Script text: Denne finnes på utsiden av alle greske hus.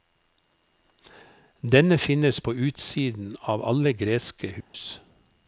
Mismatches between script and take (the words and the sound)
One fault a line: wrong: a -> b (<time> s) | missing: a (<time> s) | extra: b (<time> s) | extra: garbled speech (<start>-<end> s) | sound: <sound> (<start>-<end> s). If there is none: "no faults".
sound: dropout (4.6-4.7 s)